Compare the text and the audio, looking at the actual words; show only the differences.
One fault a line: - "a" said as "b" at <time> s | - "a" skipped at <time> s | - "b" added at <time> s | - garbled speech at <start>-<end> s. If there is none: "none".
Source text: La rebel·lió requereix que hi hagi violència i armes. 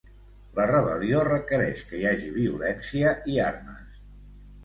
none